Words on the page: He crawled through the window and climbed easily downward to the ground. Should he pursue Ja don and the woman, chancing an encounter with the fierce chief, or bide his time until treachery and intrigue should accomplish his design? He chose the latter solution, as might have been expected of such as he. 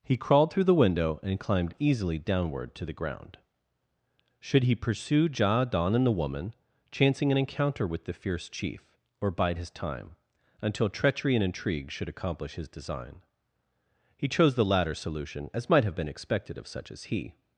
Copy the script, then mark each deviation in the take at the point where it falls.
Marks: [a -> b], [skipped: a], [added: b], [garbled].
He crawled through the window and climbed easily downward to the ground. Should he pursue Ja don and the woman, chancing an encounter with the fierce chief, or bide his time until treachery and intrigue should accomplish his design? He chose the latter solution, as might have been expected of such as he.